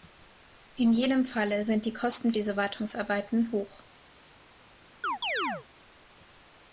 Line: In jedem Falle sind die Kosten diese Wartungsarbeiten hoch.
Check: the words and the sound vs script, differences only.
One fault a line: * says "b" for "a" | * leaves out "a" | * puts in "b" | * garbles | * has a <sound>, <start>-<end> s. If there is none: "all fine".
* has a chirp, 5.0-5.7 s